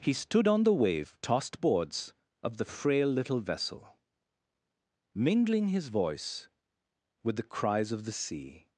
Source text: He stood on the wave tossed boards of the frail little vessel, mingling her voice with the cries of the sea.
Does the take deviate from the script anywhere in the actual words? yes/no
yes